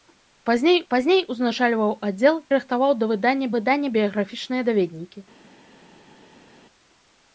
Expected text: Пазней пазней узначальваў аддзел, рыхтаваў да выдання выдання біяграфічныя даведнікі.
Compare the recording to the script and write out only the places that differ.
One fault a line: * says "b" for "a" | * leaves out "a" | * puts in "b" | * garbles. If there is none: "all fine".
all fine